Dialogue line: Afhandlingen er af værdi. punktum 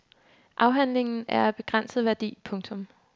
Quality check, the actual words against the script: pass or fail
fail